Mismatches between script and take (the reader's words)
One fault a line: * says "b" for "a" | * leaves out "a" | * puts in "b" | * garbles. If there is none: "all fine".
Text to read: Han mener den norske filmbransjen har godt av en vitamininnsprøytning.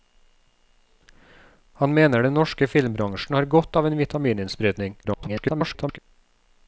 * garbles